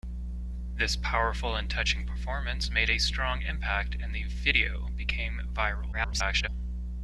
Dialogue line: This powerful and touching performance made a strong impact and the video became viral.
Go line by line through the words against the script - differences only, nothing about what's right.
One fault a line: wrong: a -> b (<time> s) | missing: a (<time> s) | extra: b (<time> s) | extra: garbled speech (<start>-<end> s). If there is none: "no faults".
extra: garbled speech (5.9-6.5 s)